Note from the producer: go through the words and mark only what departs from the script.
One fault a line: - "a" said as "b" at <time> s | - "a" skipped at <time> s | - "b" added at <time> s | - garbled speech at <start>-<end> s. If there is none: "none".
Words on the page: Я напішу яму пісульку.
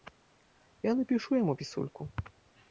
none